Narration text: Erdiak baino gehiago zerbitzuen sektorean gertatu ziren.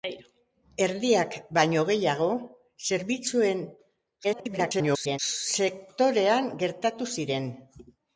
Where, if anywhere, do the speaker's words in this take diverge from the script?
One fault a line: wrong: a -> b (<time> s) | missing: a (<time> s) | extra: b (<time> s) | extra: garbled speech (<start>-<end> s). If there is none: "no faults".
extra: garbled speech (4.2-5.2 s)